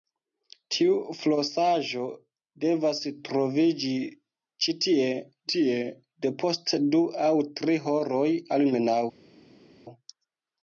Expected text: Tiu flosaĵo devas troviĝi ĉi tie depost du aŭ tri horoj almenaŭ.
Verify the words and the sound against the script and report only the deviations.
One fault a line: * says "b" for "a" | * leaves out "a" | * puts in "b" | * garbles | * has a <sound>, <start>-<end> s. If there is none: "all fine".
* puts in "tie"